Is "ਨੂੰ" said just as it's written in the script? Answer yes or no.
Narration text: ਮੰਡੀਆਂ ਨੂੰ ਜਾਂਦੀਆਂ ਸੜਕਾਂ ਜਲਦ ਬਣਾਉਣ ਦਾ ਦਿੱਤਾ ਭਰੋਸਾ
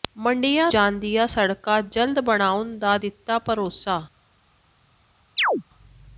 no